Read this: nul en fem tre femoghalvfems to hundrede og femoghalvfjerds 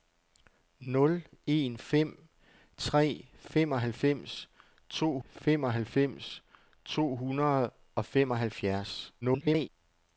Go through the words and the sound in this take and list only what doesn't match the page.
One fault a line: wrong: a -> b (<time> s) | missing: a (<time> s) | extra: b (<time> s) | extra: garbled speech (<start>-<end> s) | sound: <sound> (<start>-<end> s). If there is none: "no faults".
extra: femoghalvfems to (5.2 s)
extra: garbled speech (9.2-9.7 s)